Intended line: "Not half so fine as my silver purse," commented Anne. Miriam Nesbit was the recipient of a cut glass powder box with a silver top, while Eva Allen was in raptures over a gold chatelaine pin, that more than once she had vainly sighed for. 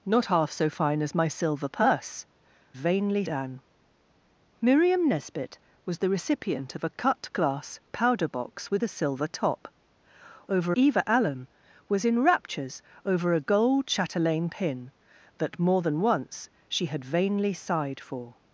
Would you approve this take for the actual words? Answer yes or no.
no